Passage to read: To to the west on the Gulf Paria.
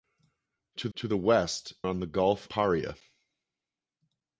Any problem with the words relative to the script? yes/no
no